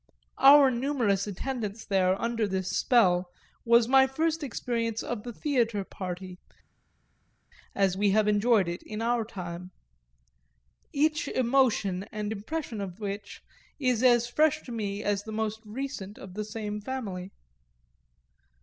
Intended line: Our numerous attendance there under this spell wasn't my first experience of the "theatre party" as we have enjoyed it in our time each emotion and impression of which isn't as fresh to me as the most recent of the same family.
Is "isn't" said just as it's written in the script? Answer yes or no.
no